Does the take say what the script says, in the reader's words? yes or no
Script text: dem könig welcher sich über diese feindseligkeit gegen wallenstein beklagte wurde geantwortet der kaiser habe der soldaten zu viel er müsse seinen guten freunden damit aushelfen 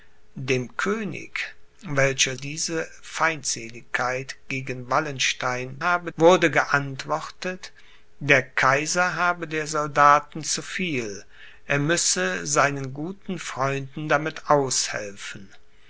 no